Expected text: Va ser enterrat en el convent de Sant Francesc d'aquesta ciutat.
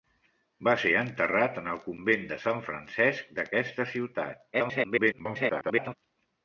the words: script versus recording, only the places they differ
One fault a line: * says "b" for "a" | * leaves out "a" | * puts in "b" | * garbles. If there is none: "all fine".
* garbles